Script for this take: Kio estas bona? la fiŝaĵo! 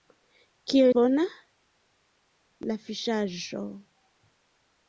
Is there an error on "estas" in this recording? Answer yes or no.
yes